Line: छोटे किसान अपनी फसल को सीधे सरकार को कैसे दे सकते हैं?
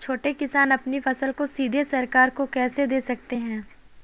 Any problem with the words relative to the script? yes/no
no